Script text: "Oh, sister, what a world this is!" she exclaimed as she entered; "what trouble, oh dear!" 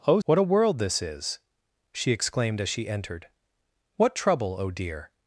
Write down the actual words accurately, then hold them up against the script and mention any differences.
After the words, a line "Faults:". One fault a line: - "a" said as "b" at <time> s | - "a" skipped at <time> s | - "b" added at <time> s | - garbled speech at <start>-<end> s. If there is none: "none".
"Oh, what a world this is!" she exclaimed as she entered; "what trouble, oh dear!"
Faults:
- "sister" skipped at 0.2 s